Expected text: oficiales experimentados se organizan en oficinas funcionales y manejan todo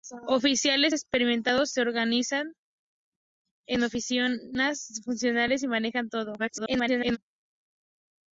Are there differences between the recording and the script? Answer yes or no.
yes